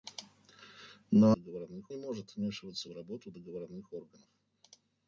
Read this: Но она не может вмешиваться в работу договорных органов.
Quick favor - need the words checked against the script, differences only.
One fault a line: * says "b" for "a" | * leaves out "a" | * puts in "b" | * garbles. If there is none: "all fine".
* says "договорных" for "она"